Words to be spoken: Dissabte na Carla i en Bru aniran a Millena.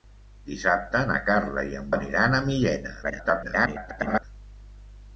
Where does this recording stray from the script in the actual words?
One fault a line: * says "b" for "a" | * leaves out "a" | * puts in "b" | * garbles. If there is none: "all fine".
* leaves out "Bru"
* garbles